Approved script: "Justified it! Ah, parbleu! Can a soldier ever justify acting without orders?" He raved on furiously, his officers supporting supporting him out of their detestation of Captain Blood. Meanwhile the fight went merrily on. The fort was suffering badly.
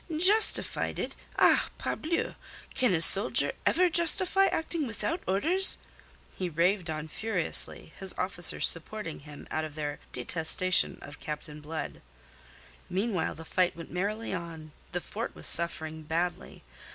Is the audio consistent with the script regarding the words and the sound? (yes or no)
no